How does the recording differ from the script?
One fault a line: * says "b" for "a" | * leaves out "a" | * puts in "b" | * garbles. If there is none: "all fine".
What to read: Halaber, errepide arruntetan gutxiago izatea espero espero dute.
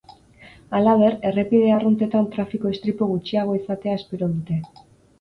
* puts in "trafiko istripu"
* leaves out "espero"